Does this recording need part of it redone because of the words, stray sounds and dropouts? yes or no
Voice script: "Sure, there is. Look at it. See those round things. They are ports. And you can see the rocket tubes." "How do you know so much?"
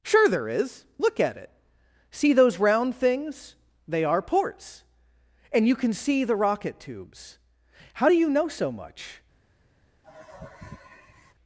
yes